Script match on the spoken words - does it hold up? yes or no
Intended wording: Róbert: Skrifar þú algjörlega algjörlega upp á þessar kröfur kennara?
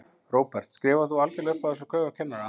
no